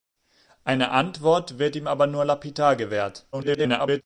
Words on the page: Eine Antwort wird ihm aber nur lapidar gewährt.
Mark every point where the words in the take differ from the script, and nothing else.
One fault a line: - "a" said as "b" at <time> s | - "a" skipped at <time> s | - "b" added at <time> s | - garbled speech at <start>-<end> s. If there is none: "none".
- garbled speech at 3.3-4.0 s